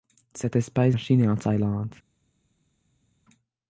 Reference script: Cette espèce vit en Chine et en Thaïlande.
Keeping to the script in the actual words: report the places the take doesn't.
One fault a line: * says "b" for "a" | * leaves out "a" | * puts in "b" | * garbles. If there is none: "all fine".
* leaves out "vit"